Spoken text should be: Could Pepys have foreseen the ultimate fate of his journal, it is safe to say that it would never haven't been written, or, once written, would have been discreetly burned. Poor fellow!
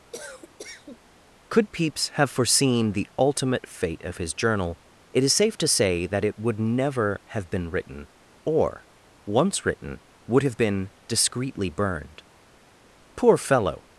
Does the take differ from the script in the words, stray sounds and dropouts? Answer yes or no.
yes